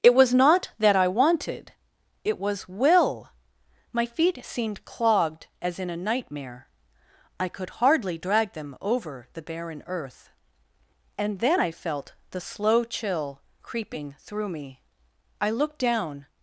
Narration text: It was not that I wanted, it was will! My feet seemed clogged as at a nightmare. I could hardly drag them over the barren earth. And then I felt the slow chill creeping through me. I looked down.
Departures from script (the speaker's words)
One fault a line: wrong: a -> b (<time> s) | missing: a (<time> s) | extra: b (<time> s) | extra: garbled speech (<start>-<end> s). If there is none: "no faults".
wrong: at -> in (5.8 s)